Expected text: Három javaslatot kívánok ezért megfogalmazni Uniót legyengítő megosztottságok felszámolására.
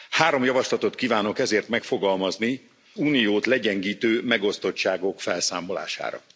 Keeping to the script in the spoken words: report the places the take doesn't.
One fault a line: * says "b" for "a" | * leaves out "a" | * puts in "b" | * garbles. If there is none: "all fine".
all fine